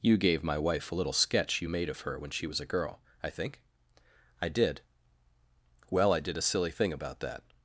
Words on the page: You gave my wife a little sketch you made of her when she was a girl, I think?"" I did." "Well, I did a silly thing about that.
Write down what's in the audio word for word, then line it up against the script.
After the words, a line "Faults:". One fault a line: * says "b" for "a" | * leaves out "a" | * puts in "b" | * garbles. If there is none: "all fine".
You gave my wife a little sketch you made of her when she was a girl, I think?"" I did." "Well, I did a silly thing about that.
Faults:
all fine